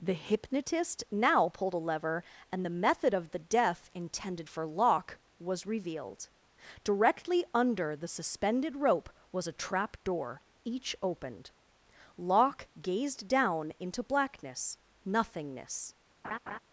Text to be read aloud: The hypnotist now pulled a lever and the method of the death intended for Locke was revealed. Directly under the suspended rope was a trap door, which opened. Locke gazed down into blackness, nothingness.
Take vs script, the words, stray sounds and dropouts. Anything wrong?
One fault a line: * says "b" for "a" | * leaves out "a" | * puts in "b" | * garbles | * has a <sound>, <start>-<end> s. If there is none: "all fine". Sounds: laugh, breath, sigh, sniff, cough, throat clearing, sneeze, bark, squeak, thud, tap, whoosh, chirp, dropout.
* says "each" for "which"
* has a laugh, 16.2-16.6 s